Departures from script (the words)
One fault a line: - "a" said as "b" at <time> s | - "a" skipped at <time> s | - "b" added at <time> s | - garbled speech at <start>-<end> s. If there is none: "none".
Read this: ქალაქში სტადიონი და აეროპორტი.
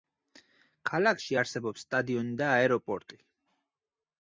- "არსებობს" added at 1.4 s